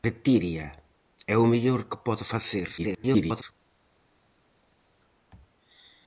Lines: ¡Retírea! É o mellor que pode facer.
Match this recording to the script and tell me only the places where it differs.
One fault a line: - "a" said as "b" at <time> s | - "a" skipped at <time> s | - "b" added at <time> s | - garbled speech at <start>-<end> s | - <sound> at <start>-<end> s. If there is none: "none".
- garbled speech at 2.8-3.4 s